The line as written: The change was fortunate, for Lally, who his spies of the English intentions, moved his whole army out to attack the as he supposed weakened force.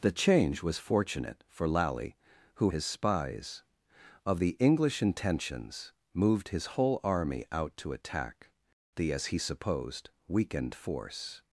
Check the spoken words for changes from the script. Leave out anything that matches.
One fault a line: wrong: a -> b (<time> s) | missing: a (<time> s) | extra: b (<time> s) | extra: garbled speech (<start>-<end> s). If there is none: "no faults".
no faults